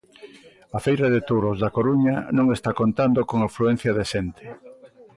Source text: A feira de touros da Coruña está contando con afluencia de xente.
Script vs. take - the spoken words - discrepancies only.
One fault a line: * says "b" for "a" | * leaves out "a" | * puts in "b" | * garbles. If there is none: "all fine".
* puts in "non"